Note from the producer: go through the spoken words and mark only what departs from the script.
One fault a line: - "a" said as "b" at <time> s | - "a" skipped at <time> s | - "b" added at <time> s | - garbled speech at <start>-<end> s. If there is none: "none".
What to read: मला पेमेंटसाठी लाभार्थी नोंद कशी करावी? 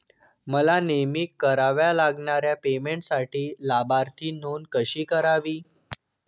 - "नेहमी कराव्या लागणाऱ्या" added at 0.8 s